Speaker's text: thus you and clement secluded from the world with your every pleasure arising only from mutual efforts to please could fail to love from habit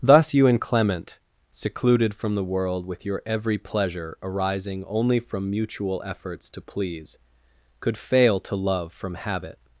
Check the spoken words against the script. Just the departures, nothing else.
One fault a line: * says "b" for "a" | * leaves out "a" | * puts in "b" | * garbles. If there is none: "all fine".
all fine